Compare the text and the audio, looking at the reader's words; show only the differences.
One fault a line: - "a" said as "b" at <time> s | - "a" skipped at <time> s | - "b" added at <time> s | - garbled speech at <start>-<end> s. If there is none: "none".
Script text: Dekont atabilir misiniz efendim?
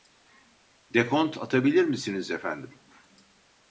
none